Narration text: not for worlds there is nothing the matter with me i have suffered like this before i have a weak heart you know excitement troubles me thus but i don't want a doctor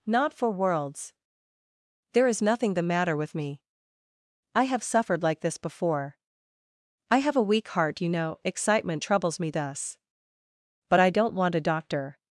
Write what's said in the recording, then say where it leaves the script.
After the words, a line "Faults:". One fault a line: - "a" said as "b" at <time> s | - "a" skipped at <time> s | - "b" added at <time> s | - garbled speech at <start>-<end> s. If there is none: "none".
not for worlds there is nothing the matter with me i have suffered like this before i have a weak heart you know excitement troubles me thus but i don't want a doctor
Faults:
none